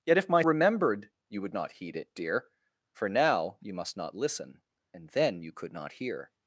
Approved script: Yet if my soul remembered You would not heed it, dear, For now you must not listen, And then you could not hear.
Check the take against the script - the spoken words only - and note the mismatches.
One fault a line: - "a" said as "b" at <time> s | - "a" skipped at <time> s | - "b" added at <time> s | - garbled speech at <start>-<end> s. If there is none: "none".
- "soul" skipped at 0.4 s